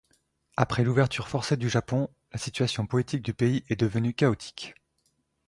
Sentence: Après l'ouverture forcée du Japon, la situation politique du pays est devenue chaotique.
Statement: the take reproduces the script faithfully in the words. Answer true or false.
true